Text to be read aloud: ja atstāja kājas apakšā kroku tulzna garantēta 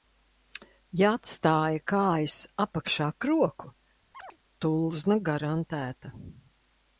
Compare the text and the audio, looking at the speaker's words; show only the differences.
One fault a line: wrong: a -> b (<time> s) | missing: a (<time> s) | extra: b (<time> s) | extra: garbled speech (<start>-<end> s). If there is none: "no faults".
no faults